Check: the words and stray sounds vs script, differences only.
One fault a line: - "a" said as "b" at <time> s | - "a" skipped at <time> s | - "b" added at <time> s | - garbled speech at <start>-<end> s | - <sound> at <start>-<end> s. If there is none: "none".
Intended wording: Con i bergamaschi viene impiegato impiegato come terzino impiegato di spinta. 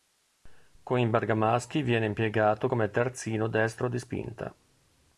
- "impiegato" skipped at 2.7 s
- "impiegato" said as "destro" at 3.5 s